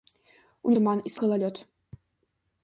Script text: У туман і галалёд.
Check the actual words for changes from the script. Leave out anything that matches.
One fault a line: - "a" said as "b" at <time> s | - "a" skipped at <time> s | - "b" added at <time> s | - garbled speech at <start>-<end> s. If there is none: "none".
none